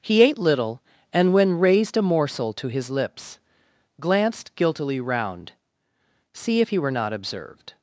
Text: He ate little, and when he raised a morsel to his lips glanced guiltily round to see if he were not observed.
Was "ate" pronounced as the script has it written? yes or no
yes